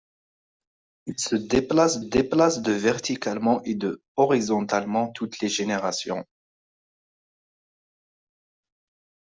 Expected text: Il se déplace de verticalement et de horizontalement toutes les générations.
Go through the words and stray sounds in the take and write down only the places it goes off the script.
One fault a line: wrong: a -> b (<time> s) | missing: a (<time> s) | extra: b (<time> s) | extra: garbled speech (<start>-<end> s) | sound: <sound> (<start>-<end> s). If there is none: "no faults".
extra: déplace (2.0 s)